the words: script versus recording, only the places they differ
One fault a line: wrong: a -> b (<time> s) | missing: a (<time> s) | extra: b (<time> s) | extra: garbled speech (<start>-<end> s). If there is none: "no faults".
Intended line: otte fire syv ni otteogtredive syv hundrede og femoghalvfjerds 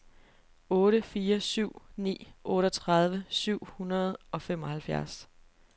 no faults